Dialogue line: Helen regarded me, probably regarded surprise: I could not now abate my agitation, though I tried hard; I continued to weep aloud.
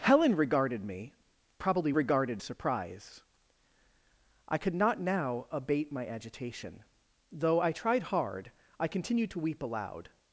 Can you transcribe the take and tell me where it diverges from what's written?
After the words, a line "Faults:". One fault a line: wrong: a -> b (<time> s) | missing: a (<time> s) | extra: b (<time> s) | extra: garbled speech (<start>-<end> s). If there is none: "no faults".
Helen regarded me, probably regarded surprise: I could not now abate my agitation, though I tried hard; I continued to weep aloud.
Faults:
no faults